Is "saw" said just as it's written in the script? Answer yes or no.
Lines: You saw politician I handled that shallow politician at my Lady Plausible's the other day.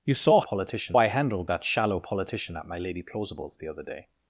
yes